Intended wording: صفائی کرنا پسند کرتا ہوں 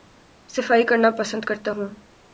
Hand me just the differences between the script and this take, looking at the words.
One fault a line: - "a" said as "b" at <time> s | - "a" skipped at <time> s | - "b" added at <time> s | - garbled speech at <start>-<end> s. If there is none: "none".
none